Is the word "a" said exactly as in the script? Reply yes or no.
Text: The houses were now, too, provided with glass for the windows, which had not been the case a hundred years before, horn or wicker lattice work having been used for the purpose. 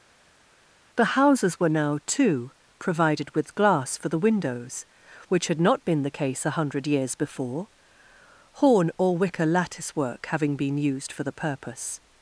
yes